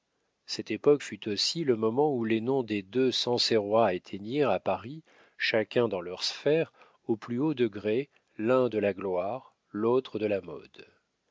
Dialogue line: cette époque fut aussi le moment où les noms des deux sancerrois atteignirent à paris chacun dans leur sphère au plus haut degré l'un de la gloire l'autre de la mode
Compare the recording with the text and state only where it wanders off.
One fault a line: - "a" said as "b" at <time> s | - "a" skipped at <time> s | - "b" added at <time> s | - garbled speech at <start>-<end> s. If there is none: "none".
none